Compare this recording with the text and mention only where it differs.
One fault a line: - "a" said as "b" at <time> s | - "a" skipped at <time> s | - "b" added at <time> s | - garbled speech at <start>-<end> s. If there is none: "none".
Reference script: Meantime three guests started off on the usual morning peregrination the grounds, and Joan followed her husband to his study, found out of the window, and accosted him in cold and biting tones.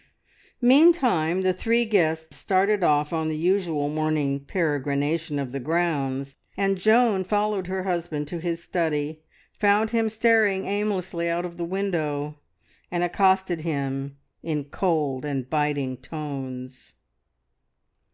- "the" added at 1.4 s
- "of" added at 5.4 s
- "him staring aimlessly" added at 9.9 s